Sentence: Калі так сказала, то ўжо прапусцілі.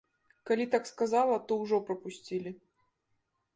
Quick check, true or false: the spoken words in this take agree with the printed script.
true